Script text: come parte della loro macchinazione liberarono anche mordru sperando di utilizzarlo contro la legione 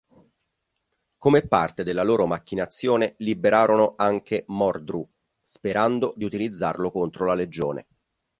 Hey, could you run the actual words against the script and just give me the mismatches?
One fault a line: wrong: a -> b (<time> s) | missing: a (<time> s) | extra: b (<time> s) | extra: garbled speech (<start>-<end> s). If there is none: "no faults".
no faults